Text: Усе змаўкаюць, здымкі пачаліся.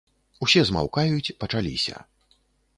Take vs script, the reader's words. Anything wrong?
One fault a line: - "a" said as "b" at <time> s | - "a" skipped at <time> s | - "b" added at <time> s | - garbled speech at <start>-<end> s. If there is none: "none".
- "здымкі" skipped at 1.3 s